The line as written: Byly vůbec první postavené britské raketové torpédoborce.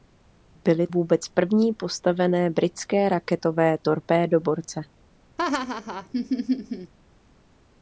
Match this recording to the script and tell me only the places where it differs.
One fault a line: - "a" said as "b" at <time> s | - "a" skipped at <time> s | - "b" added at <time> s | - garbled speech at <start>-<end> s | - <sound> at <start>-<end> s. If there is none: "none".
- laugh at 5.4-6.9 s